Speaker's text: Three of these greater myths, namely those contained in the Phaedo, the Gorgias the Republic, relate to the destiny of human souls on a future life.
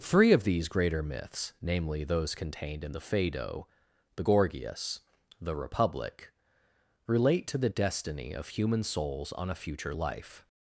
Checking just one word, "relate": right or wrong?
right